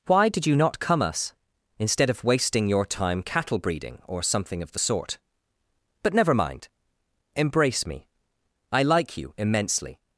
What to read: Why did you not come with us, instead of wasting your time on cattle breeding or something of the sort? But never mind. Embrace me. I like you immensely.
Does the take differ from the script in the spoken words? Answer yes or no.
yes